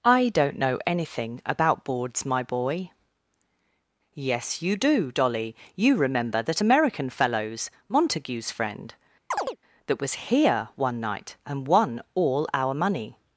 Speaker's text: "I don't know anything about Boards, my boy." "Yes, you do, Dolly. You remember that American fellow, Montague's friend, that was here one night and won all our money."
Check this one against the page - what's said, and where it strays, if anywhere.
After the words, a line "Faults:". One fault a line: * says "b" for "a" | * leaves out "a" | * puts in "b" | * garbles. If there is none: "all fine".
"I don't know anything about Boards, my boy." "Yes, you do, Dolly. You remember that American fellows, Montague's friend, that was here one night and won all our money."
Faults:
* says "fellows" for "fellow"